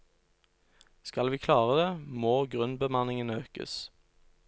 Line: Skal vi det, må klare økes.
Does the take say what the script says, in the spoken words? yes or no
no